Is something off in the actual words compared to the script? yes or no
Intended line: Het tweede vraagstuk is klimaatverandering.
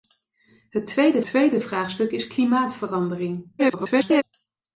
yes